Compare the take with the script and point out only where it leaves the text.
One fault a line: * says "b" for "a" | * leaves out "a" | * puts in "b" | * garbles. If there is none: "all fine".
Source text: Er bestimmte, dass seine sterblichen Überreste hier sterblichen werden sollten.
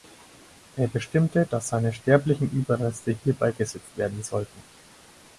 * says "beigesetzt" for "sterblichen"